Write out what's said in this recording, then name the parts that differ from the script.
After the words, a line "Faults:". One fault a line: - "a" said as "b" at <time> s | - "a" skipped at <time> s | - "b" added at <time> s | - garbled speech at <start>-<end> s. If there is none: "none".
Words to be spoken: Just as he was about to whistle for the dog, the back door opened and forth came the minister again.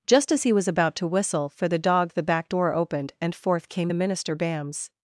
Just as he was about to whistle for the dog, the back door opened and forth came the minister bams.
Faults:
- "again" said as "bams" at 4.4 s